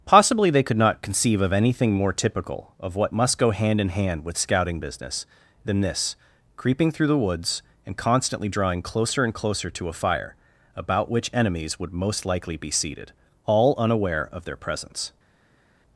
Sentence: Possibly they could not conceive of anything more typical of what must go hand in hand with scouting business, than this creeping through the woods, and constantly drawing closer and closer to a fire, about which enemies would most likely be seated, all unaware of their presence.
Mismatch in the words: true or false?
false